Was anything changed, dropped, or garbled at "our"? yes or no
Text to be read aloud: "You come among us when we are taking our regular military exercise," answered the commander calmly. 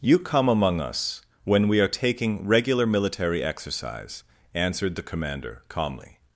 yes